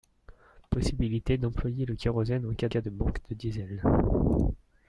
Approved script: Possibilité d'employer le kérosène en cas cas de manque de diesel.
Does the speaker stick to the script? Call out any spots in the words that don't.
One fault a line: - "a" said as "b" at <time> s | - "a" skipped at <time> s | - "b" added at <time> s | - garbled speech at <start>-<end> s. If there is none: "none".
none